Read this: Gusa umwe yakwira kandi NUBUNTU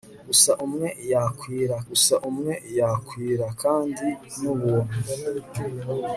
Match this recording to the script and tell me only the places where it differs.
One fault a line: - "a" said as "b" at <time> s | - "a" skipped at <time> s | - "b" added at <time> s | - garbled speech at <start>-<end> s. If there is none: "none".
- "gusa umwe yakwira" added at 1.9 s